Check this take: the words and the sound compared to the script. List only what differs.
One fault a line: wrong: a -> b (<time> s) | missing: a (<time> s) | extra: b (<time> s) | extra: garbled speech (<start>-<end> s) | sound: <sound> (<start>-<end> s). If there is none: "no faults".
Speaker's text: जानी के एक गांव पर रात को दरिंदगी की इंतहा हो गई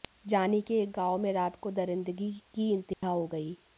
wrong: पर -> में (1.2 s)
sound: dropout (2.9-3.0 s)